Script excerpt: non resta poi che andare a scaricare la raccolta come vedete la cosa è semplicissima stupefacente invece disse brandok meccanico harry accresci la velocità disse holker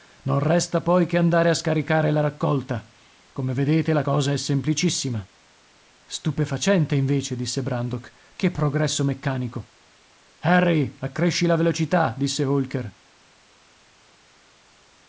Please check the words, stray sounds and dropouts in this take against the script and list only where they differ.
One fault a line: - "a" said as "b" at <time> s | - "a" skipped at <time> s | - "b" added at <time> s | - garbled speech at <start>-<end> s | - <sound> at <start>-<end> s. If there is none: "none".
- "che progresso" added at 8.3 s